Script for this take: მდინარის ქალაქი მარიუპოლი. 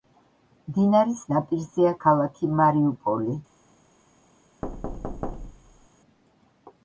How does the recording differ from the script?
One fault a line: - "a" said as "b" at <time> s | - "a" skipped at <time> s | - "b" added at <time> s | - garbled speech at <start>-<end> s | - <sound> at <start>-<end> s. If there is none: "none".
- "ნაპირზეა" added at 1.3 s
- thud at 4.6-5.9 s